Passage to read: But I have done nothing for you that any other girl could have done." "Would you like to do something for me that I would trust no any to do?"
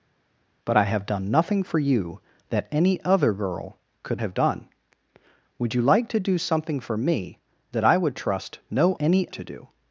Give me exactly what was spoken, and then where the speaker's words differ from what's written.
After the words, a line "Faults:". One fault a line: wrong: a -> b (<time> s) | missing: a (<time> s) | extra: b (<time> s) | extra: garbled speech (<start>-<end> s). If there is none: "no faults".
But I have done nothing for you that any other girl could have done." "Would you like to do something for me that I would trust no any to do?"
Faults:
no faults